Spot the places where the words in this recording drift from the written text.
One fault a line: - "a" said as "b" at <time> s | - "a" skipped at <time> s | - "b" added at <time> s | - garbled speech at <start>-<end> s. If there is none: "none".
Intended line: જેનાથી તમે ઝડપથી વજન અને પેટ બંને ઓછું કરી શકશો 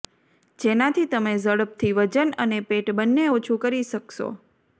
none